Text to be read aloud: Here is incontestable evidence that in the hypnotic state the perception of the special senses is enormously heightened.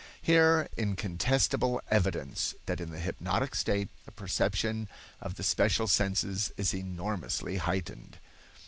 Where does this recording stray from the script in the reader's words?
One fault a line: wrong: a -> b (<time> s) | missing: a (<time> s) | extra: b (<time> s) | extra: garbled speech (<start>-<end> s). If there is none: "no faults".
missing: is (0.7 s)